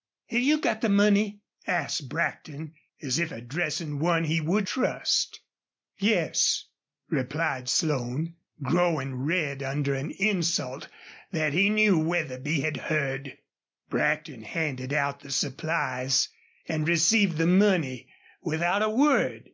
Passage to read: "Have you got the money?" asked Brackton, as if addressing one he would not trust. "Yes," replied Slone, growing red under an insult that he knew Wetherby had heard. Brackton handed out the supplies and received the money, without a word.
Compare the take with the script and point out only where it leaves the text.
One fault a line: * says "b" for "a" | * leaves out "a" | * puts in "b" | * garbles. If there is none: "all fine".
* leaves out "not"